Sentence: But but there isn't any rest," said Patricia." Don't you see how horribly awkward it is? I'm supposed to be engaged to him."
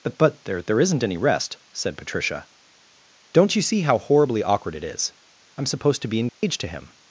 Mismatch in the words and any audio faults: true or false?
true